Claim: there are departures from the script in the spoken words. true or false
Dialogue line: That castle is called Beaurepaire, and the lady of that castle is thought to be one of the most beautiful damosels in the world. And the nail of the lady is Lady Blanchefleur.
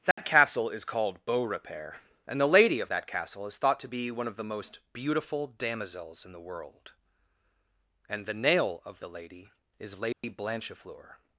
false